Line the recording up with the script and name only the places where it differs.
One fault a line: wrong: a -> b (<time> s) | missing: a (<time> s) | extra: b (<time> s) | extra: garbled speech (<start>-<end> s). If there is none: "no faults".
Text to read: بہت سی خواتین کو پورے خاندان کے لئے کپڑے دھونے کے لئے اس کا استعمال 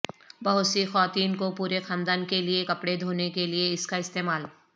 no faults